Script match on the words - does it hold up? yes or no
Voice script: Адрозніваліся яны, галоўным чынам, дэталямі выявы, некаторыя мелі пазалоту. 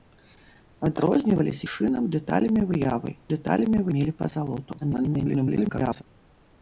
no